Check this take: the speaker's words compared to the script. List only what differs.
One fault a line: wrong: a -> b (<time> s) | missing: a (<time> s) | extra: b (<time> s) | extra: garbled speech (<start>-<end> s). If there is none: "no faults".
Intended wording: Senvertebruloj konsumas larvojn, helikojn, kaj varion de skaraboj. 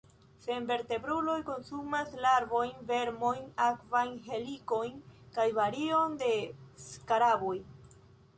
extra: vermojn akvajn (2.9 s)